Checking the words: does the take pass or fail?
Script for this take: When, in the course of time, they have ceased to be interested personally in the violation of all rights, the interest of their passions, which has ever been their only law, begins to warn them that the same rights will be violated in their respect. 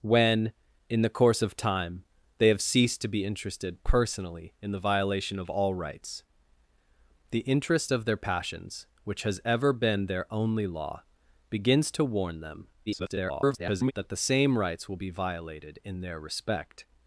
fail